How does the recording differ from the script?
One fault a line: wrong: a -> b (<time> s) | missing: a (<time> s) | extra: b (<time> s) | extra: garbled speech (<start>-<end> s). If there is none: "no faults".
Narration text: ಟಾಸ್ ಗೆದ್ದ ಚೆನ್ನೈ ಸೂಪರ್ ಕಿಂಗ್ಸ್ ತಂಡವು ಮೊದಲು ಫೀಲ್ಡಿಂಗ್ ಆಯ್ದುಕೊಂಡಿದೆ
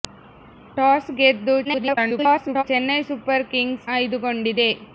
extra: garbled speech (1.6-2.6 s)
missing: ತಂಡವು ಮೊದಲು ಫೀಲ್ಡಿಂಗ್ (3.9 s)